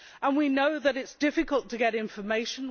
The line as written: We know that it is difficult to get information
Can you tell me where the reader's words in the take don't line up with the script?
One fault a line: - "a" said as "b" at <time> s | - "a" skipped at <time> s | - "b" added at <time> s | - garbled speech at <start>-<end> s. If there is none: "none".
none